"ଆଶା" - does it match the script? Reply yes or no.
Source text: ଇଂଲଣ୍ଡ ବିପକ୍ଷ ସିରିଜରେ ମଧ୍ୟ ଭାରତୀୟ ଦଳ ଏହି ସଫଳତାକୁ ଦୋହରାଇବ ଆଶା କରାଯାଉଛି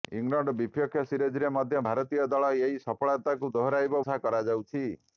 yes